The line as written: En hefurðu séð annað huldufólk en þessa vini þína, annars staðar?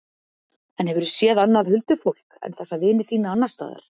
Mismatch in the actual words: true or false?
false